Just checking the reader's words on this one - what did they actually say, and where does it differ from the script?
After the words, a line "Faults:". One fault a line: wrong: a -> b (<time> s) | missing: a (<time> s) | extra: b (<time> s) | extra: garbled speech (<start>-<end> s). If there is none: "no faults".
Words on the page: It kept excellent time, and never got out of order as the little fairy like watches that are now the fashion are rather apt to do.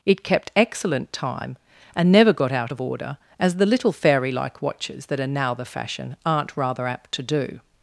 It kept excellent time, and never got out of order as the little fairy like watches that are now the fashion aren't rather apt to do.
Faults:
wrong: are -> aren't (6.2 s)